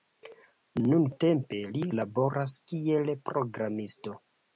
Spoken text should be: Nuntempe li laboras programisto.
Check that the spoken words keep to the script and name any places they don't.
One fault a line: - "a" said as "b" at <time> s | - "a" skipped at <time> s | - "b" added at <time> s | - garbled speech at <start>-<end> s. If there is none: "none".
- "kiel" added at 2.7 s